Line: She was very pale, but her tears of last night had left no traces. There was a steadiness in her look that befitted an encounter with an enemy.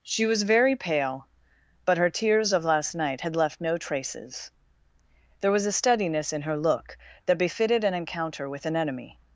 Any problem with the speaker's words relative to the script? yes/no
no